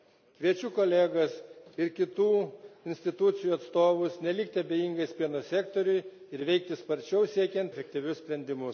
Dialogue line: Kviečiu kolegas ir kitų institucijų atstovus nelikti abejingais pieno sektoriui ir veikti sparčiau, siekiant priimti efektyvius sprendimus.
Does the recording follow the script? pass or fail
fail